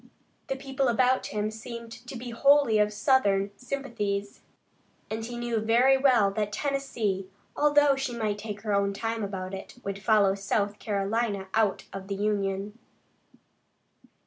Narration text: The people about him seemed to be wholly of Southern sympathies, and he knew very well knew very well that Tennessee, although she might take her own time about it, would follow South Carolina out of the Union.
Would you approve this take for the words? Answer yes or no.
no